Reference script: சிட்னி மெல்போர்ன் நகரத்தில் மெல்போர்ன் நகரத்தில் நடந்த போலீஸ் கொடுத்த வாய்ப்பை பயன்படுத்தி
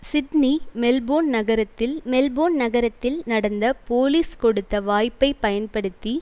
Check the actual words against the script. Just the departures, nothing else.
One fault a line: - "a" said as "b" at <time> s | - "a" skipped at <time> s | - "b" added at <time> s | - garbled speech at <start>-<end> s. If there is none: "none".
none